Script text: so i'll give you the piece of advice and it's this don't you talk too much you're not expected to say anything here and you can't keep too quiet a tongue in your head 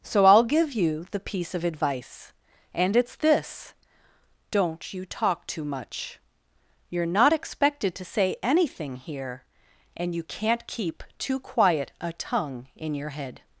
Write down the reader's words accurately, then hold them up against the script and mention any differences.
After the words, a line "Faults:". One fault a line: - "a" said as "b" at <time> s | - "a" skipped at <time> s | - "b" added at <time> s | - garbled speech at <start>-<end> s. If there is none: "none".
so i'll give you the piece of advice and it's this don't you talk too much you're not expected to say anything here and you can't keep too quiet a tongue in your head
Faults:
none